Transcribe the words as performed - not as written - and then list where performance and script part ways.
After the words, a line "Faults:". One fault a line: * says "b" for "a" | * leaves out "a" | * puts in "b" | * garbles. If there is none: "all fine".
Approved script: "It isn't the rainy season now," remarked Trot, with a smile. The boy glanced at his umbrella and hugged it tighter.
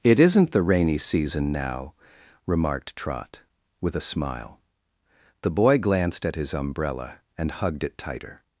"It isn't the rainy season now," remarked Trot, with a smile. The boy glanced at his umbrella and hugged it tighter.
Faults:
all fine